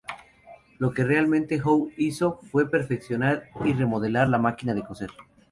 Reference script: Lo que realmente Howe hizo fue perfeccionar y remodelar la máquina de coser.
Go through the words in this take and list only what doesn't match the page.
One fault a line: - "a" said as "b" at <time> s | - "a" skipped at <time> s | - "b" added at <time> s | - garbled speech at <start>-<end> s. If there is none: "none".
none